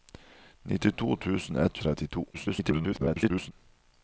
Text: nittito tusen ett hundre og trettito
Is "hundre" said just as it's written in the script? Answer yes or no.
no